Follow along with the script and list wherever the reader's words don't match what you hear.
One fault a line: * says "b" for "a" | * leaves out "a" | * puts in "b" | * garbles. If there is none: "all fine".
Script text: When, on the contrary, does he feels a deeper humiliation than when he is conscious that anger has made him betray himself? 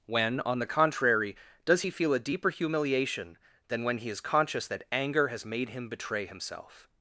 * says "feel" for "feels"